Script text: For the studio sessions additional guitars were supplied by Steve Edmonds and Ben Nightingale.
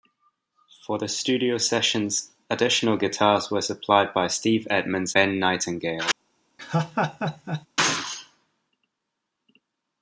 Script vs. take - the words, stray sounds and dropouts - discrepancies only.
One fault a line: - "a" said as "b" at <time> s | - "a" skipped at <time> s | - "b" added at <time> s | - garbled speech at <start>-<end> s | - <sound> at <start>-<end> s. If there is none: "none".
- "and" skipped at 5.1 s
- laugh at 6.6-7.7 s